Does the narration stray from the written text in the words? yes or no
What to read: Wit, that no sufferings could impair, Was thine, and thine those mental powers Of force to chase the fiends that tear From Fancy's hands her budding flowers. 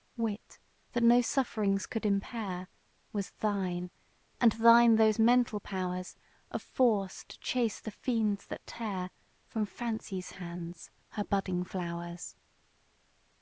no